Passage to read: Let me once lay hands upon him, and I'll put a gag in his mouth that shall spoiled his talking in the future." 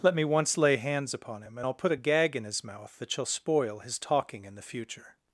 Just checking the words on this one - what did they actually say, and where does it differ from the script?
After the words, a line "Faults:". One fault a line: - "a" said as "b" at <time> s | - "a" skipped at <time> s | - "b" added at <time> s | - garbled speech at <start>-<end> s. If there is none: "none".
Let me once lay hands upon him, and I'll put a gag in his mouth that shall spoil his talking in the future."
Faults:
- "spoiled" said as "spoil" at 3.2 s